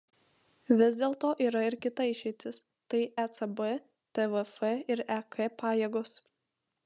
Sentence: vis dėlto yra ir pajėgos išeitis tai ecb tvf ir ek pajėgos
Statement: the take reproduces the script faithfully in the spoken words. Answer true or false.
false